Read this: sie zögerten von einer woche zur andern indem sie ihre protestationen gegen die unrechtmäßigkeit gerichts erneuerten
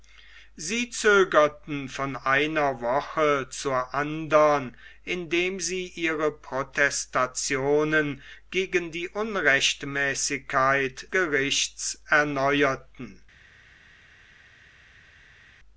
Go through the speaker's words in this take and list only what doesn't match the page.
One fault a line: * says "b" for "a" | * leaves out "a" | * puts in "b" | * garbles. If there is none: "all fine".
all fine